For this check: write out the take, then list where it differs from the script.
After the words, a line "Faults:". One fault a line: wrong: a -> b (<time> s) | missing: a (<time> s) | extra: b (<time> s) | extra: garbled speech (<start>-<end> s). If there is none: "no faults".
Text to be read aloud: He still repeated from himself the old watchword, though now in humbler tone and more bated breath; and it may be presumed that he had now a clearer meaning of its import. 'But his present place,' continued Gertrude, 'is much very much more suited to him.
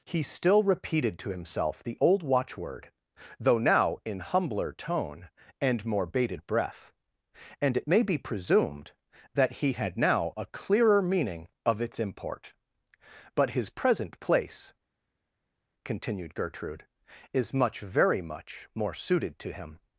He still repeated to himself the old watchword, though now in humbler tone and more bated breath; and it may be presumed that he had now a clearer meaning of its import. 'But his present place,' continued Gertrude, 'is much very much more suited to him.
Faults:
wrong: from -> to (1.2 s)